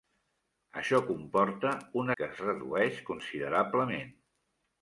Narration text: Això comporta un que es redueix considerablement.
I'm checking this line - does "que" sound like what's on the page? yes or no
yes